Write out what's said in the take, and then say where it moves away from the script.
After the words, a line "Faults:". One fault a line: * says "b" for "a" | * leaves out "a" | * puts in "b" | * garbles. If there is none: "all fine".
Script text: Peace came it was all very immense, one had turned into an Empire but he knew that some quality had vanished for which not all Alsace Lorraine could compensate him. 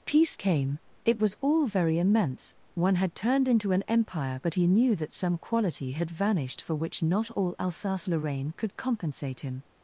Peace came it was all very immense, one had turned into an Empire but he knew that some quality had vanished for which not all Alsace Lorraine could compensate him.
Faults:
all fine